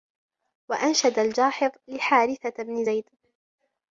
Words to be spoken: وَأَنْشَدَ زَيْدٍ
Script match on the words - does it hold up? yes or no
no